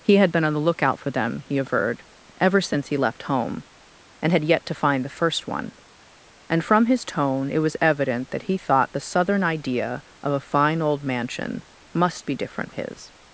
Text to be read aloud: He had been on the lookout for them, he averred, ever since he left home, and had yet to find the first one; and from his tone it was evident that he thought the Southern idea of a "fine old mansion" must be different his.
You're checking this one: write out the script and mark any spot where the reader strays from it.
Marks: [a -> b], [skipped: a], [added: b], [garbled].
He had been on the lookout for them, he averred, ever since he left home, and had yet to find the first one; and from his tone it was evident that he thought the Southern idea of a "fine old mansion" must be different his.